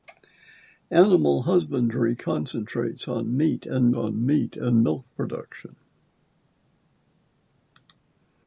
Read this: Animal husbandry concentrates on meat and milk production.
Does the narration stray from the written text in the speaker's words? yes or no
yes